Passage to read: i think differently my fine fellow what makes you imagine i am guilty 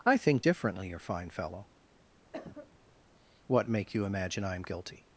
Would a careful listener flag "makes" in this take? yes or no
yes